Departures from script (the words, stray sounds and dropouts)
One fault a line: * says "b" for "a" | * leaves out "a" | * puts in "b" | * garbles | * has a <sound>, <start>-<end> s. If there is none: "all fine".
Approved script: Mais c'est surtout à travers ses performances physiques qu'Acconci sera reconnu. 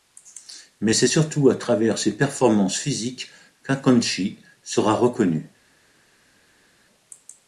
all fine